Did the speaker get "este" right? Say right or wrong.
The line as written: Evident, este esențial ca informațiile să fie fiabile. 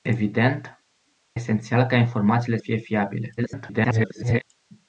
wrong